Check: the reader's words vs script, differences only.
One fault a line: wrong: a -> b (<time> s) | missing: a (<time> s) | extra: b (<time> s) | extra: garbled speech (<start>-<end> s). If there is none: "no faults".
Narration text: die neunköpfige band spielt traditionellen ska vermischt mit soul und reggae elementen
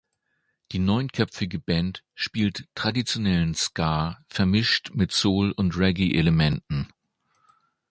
no faults